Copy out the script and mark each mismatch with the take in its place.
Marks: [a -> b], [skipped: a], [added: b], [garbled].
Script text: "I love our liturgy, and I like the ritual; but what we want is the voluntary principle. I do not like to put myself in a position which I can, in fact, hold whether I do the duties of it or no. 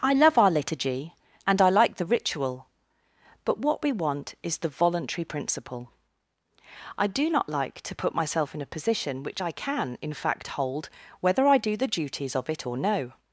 "I love our liturgy, and I like the ritual; but what we want is the voluntary principle. I do not like to put myself in a position which I can, in fact, hold whether I do the duties of it or no.